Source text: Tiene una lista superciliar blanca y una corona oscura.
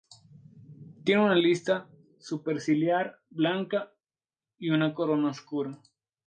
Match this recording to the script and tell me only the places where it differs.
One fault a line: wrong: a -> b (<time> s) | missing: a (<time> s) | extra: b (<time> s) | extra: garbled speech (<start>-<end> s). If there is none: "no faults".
no faults